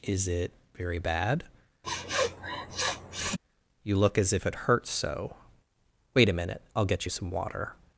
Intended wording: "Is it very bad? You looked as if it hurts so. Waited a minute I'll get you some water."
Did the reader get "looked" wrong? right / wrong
wrong